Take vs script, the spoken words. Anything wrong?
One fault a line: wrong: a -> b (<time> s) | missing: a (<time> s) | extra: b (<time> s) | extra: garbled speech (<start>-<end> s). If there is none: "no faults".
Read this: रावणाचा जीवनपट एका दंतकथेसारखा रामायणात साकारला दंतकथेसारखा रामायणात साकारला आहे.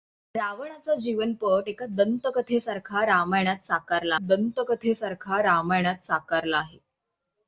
no faults